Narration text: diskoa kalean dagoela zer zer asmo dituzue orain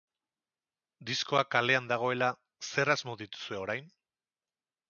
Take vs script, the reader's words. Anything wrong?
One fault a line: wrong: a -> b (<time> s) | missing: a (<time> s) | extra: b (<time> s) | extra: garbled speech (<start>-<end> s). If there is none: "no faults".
missing: zer (2.9 s)